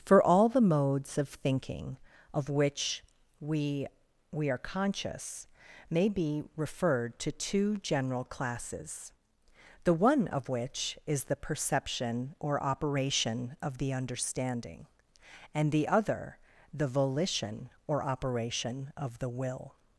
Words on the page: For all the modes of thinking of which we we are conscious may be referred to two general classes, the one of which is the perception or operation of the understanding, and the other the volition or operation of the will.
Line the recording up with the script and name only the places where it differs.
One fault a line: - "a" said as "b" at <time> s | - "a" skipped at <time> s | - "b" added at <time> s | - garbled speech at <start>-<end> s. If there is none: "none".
none